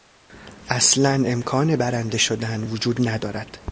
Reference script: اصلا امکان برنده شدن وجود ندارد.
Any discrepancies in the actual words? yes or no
no